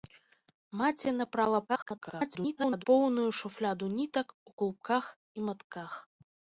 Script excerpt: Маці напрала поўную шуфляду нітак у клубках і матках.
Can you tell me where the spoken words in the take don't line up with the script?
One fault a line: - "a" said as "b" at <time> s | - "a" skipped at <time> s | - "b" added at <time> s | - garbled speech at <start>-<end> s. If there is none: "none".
- garbled speech at 1.7-2.8 s